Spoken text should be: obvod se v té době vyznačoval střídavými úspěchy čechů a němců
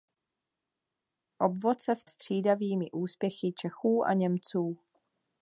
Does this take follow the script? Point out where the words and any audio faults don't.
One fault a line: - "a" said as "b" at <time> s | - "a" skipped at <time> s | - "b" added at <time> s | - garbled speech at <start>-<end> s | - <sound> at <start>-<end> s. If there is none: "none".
- "té době vyznačoval" skipped at 2.1 s